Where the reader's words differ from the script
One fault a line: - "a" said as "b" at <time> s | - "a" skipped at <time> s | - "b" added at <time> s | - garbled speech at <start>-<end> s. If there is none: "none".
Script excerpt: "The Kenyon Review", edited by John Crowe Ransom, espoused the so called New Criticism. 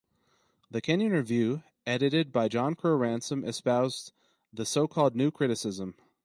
none